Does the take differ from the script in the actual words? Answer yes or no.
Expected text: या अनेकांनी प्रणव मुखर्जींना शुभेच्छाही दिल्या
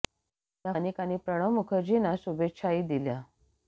no